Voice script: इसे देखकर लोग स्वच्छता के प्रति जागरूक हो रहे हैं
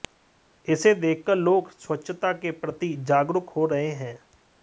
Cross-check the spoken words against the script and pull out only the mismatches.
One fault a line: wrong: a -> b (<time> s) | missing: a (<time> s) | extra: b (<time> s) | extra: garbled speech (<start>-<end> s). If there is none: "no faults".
no faults